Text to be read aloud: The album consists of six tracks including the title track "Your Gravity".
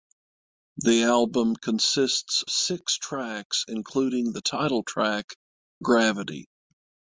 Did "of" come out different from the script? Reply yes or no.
yes